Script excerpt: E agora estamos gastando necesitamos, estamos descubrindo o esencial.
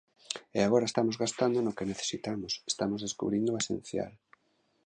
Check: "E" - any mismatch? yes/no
no